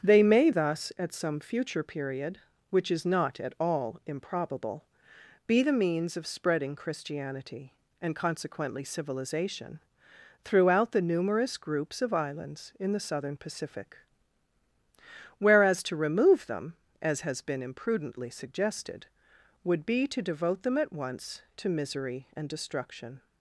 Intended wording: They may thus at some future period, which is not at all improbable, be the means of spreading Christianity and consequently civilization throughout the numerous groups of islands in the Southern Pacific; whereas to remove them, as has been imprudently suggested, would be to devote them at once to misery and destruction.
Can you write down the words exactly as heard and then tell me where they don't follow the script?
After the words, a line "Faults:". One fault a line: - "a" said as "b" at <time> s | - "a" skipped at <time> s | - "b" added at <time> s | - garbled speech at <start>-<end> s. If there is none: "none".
They may thus at some future period, which is not at all improbable, be the means of spreading Christianity and consequently civilization throughout the numerous groups of islands in the Southern Pacific; whereas to remove them, as has been imprudently suggested, would be to devote them at once to misery and destruction.
Faults:
none